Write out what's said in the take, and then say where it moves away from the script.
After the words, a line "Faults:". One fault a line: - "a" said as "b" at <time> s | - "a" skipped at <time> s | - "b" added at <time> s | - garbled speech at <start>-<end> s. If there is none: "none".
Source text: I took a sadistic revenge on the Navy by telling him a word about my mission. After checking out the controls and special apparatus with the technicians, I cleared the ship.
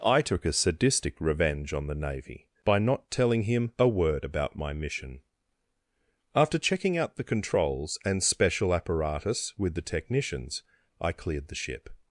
I took a sadistic revenge on the Navy by not telling him a word about my mission. After checking out the controls and special apparatus with the technicians, I cleared the ship.
Faults:
- "not" added at 2.8 s